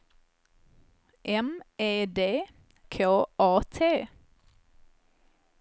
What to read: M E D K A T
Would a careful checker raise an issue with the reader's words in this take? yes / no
no